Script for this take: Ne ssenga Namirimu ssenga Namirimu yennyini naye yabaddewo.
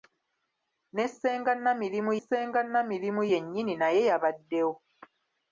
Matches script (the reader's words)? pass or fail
pass